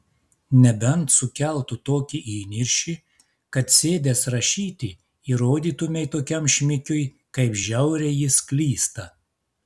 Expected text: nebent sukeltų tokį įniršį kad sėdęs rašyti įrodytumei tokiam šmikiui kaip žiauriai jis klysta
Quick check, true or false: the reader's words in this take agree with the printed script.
true